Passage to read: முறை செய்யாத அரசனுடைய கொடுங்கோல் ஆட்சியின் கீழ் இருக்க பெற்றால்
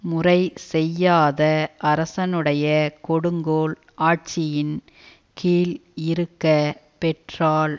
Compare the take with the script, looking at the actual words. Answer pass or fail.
pass